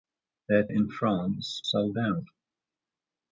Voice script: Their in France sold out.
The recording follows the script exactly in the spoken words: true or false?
true